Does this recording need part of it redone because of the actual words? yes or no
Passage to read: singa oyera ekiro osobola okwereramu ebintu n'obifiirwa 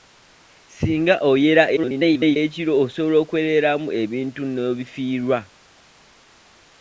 yes